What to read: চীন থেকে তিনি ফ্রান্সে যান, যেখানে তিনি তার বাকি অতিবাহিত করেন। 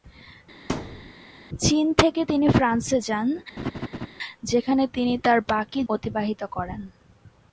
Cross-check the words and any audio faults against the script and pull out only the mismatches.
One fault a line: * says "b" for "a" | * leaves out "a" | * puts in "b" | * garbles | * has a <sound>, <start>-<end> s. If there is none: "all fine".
* has a thud, 0.7-1.1 s
* has a laugh, 3.6-4.1 s